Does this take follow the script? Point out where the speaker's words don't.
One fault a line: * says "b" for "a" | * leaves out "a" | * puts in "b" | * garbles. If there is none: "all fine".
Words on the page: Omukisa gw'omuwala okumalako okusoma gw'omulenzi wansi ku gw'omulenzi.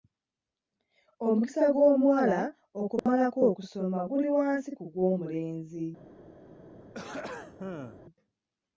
* says "guli" for "gw'omulenzi"